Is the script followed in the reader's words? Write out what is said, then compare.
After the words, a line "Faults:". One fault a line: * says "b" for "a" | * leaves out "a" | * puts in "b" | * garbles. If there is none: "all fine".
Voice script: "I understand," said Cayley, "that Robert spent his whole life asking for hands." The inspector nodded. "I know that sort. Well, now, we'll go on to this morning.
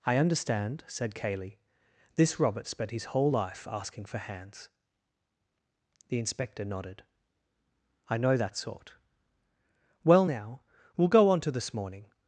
"I understand," said Cayley, "this Robert spent his whole life asking for hands." The inspector nodded. "I know that sort. Well, now, we'll go on to this morning.
Faults:
* says "this" for "that"